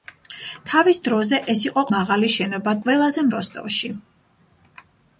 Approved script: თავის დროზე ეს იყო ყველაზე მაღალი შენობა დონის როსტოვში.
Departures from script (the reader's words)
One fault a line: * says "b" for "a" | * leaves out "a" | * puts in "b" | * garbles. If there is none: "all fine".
* leaves out "ყველაზე"
* says "ყველაზე" for "დონის"